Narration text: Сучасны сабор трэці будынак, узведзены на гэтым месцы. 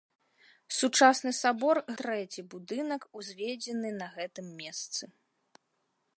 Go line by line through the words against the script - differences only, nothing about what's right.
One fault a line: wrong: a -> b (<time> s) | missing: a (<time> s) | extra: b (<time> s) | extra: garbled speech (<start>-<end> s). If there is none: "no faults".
no faults